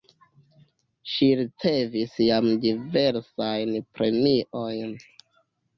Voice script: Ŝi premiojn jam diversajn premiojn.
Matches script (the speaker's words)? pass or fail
fail